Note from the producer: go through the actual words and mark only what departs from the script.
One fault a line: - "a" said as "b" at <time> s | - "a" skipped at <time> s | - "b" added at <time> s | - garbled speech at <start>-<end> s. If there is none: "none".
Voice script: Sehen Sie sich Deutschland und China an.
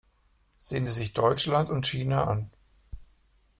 none